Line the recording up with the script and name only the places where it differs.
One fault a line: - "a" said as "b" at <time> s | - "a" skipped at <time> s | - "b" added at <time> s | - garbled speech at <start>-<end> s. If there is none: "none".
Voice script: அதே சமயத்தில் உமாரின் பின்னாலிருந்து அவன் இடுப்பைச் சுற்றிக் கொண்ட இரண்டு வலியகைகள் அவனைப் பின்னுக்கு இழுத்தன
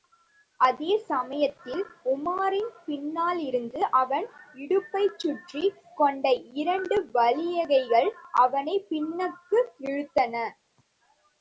none